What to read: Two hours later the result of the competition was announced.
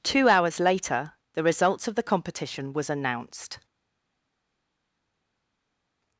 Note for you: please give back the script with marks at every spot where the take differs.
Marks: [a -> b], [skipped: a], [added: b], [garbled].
Two hours later the [result -> results] of the competition was announced.